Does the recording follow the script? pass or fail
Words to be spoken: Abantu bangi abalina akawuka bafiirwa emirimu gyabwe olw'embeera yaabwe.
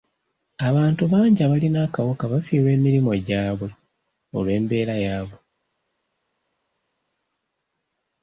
pass